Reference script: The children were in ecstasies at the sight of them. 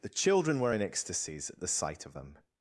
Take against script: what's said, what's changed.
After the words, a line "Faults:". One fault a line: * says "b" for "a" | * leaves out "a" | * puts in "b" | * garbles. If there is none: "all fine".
The children were in ecstasies at the sight of them.
Faults:
all fine